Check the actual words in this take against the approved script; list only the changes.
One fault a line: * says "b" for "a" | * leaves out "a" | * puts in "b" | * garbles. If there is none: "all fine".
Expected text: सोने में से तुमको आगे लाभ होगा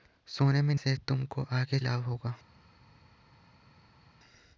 all fine